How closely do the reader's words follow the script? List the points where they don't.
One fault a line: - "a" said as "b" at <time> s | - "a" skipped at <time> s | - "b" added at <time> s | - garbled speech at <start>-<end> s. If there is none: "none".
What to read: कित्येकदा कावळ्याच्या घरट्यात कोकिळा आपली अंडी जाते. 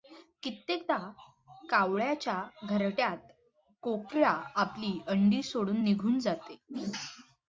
- "सोडून निघून" added at 5.4 s